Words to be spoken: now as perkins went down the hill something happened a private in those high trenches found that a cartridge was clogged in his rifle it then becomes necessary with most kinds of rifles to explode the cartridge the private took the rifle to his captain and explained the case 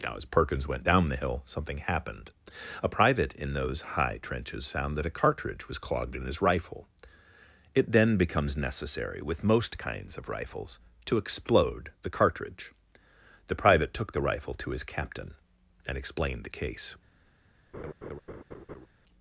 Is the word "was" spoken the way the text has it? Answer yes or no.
yes